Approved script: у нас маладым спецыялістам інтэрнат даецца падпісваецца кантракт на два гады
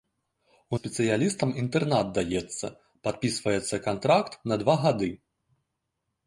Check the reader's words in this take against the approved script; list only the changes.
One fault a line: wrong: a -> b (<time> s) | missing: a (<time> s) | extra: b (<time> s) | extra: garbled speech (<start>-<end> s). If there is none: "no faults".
missing: нас маладым (0.8 s)